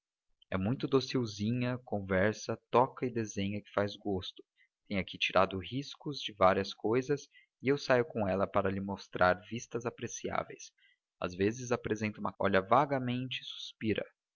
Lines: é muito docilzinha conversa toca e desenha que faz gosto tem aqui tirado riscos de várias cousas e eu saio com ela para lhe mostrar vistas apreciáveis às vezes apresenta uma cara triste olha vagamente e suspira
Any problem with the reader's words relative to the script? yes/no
yes